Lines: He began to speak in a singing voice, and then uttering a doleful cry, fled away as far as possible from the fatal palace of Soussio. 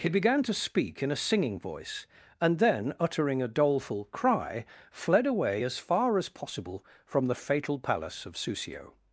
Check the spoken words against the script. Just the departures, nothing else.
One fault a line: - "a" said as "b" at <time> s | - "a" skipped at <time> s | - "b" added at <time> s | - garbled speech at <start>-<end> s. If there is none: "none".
none